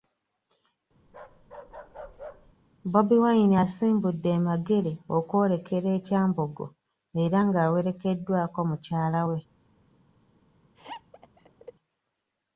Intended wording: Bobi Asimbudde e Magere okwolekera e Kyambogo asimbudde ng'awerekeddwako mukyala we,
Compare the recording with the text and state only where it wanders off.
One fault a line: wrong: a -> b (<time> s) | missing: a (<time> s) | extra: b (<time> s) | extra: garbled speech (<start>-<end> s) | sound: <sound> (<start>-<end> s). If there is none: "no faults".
sound: bark (1.1-2.5 s)
extra: Wine (3.2 s)
wrong: asimbudde -> era (7.2 s)
sound: laugh (10.7-11.7 s)